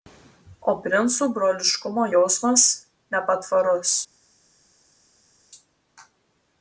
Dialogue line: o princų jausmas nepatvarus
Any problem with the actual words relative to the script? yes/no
yes